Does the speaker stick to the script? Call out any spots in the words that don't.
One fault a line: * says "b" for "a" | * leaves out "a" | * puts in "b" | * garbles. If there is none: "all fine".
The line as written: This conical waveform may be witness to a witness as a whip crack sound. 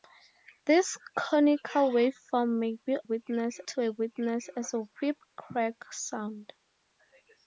all fine